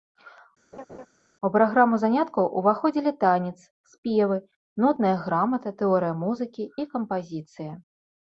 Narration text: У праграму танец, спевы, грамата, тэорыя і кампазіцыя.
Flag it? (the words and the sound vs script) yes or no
yes